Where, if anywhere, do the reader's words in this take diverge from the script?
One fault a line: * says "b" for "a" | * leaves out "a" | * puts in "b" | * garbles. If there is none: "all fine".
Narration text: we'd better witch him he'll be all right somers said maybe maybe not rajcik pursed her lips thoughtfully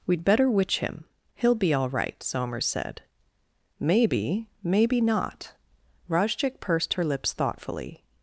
all fine